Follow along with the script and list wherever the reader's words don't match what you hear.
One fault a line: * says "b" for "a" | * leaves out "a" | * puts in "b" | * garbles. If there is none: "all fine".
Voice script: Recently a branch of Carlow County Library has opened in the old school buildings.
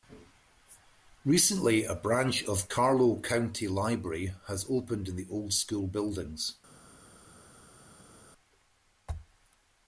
all fine